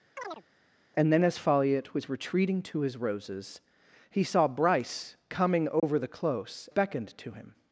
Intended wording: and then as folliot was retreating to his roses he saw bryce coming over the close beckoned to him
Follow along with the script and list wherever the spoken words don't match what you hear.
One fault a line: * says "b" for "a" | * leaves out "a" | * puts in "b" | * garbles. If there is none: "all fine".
all fine